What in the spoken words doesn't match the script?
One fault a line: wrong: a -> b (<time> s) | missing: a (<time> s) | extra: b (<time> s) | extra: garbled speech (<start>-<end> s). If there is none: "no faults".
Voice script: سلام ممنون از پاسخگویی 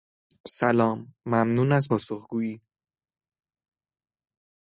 no faults